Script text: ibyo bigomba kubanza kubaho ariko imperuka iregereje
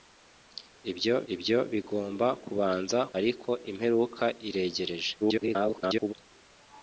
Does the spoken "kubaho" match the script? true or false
false